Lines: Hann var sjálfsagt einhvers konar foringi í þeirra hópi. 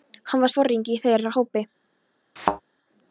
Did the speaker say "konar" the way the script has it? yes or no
no